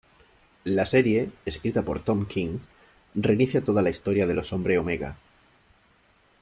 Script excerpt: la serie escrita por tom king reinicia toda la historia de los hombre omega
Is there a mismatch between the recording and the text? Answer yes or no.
no